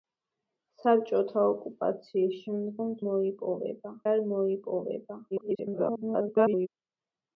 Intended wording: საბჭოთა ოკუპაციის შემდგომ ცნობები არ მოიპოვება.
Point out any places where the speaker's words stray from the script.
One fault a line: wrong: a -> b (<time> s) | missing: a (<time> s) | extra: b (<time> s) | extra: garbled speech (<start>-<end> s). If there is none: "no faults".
wrong: ცნობები -> მოიპოვება (3.1 s)
extra: garbled speech (5.3-6.7 s)